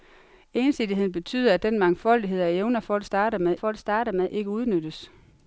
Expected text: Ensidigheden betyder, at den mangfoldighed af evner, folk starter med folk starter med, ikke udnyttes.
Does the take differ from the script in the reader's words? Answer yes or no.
no